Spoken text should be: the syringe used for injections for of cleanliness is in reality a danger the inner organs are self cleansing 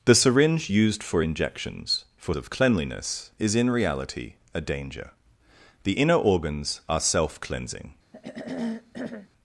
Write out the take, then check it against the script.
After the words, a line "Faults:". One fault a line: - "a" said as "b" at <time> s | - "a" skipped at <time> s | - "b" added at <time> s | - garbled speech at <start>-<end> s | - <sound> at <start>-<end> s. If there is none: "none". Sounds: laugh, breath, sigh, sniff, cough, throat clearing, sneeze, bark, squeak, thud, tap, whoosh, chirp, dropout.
the syringe used for injections for of cleanliness is in reality a danger the inner organs are self cleansing
Faults:
- throat clearing at 8.1-9.3 s